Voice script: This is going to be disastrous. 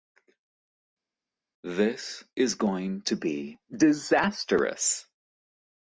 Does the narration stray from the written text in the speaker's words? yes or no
no